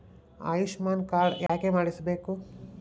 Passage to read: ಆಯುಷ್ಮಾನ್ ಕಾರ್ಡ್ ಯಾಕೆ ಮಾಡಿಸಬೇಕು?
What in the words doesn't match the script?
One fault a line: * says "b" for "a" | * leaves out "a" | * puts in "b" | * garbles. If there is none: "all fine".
all fine